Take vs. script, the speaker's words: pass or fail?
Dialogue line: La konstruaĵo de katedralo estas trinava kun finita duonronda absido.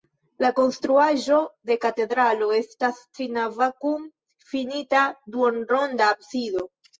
pass